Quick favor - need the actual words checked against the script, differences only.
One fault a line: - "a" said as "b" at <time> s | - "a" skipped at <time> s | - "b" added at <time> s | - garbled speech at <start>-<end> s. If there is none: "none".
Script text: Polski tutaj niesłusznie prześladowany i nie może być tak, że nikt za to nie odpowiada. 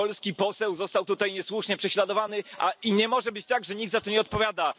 - "poseł został" added at 0.3 s